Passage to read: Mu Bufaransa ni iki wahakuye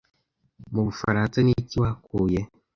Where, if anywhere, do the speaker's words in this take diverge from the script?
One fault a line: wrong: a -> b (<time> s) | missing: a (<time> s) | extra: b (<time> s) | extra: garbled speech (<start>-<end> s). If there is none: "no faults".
no faults